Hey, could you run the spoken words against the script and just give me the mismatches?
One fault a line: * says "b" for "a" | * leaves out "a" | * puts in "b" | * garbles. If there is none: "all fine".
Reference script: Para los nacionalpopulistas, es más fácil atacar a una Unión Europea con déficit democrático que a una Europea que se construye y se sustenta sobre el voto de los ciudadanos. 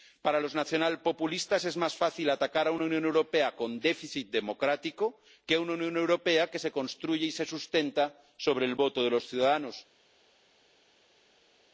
* puts in "Unión"